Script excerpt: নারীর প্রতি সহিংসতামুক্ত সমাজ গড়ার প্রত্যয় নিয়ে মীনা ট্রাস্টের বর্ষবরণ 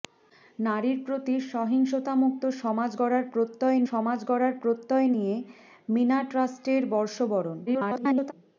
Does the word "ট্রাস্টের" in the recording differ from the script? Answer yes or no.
no